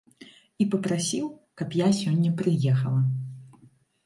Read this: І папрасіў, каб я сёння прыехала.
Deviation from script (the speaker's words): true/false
false